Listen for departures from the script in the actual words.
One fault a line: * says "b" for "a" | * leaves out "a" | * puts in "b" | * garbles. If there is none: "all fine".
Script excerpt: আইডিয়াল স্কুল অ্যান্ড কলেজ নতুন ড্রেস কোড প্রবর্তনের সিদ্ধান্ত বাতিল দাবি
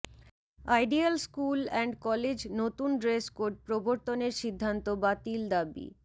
all fine